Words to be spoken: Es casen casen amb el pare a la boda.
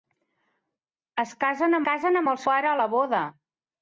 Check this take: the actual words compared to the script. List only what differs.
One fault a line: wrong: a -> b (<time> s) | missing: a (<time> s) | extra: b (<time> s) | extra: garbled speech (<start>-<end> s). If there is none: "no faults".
no faults